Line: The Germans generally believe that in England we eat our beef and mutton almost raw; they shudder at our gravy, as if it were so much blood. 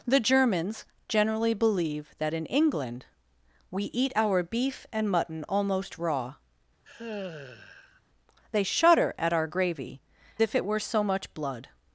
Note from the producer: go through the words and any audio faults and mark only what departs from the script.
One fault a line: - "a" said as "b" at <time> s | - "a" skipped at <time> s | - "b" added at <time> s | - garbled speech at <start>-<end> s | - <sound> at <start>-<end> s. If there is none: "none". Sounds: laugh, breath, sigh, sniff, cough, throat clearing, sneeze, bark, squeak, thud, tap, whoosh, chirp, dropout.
- sigh at 6.8-8.0 s
- "as" skipped at 10.0 s